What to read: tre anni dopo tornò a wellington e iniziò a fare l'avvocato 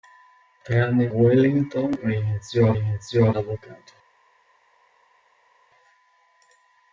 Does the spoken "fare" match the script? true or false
false